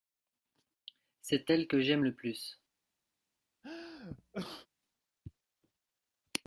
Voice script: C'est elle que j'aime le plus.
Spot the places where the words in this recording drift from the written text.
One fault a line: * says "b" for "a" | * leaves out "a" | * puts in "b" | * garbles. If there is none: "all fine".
all fine